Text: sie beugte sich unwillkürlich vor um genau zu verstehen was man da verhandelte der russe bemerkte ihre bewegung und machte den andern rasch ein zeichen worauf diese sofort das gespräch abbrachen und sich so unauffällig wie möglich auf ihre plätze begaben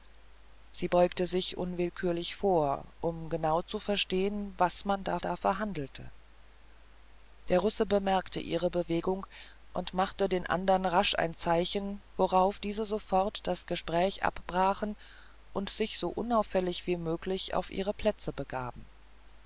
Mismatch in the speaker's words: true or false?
true